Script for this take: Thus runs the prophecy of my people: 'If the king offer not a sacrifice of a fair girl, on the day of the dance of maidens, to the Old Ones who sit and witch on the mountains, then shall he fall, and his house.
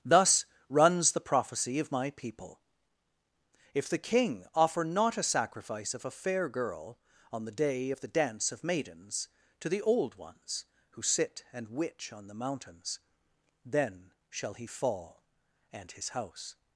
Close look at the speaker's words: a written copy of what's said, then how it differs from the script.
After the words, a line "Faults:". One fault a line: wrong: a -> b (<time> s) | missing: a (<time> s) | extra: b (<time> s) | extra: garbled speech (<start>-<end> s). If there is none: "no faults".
Thus runs the prophecy of my people: 'If the king offer not a sacrifice of a fair girl, on the day of the dance of maidens, to the Old Ones who sit and witch on the mountains, then shall he fall, and his house.
Faults:
no faults